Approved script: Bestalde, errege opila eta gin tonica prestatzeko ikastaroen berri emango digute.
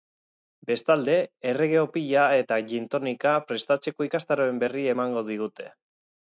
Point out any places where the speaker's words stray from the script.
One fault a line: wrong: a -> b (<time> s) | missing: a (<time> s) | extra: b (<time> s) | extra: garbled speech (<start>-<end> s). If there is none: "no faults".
no faults